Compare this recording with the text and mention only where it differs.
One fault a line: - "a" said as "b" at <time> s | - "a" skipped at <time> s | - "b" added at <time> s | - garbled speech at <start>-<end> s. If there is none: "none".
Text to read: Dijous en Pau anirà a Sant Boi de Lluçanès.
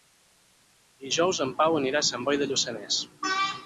none